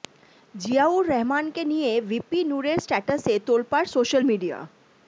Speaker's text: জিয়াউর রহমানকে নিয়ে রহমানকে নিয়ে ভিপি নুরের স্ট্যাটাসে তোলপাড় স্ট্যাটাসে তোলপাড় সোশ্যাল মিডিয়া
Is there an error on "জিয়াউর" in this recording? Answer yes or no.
no